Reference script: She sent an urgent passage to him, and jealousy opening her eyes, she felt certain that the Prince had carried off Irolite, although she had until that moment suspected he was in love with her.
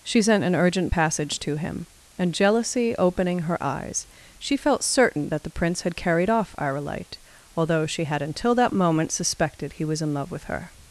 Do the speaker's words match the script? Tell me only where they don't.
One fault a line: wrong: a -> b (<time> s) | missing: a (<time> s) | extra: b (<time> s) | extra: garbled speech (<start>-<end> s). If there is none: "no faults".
no faults